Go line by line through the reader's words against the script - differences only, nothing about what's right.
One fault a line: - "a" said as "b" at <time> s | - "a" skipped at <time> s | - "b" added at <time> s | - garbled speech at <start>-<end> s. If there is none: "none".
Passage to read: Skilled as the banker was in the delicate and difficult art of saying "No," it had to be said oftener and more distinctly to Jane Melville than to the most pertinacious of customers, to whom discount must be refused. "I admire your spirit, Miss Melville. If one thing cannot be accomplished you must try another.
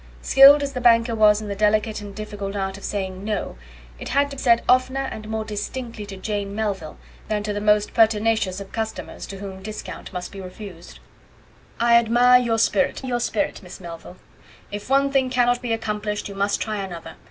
- "be" skipped at 4.4 s
- "your spirit" added at 13.0 s